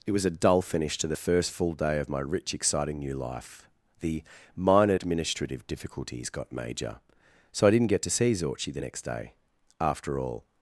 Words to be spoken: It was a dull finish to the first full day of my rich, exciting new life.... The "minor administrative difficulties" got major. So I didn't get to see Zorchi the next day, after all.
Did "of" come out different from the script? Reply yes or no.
no